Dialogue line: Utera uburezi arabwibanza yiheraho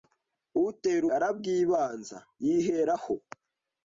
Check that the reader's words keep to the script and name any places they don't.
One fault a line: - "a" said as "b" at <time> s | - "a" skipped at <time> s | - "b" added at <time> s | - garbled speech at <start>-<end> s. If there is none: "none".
- "uburezi" skipped at 1.0 s